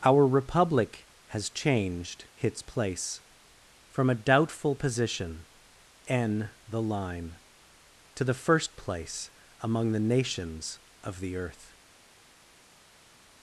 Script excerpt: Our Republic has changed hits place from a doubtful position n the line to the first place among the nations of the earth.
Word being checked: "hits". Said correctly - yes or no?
no